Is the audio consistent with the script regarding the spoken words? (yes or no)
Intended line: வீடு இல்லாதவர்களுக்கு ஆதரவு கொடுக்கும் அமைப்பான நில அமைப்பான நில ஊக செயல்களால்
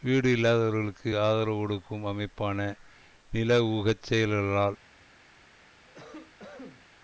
no